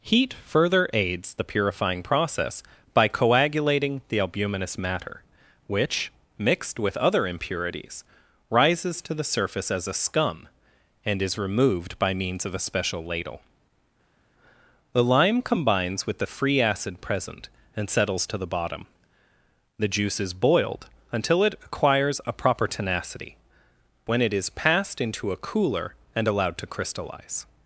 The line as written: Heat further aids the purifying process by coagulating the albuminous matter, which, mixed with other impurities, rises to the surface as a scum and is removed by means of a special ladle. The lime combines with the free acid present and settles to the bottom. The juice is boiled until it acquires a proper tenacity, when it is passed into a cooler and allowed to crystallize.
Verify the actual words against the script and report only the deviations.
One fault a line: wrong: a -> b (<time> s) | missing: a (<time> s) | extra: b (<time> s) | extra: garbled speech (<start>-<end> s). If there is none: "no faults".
no faults